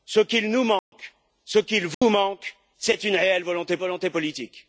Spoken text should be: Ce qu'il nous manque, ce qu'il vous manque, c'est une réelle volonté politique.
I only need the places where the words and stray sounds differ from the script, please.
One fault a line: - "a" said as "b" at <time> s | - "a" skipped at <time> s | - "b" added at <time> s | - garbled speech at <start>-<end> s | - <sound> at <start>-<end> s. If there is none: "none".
- dropout at 0.8-0.9 s
- dropout at 1.9-2.0 s
- "volonté" added at 3.8 s